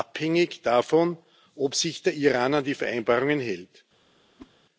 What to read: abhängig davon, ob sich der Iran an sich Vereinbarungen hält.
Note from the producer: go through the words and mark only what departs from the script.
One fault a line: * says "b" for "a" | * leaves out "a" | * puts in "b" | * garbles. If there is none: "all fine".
* says "die" for "sich"